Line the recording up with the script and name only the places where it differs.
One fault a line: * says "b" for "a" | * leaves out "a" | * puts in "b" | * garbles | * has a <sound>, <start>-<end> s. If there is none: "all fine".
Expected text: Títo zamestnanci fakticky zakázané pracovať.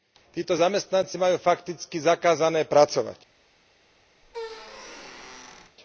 * puts in "majú"
* has a squeak, 4.2-5.8 s